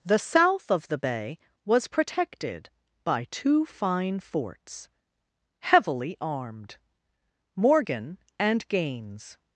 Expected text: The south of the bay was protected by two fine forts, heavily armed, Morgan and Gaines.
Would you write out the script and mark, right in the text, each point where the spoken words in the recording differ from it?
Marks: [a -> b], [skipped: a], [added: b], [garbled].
The south of the bay was protected by two fine forts, heavily armed, Morgan and Gaines.